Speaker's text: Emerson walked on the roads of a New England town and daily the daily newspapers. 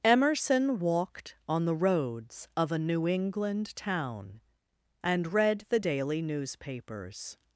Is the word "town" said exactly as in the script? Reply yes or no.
yes